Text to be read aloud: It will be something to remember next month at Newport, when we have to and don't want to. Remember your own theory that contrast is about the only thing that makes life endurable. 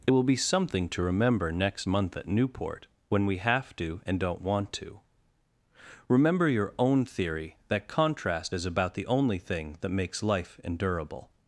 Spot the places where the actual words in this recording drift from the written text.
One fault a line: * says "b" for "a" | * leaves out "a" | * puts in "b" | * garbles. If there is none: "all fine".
all fine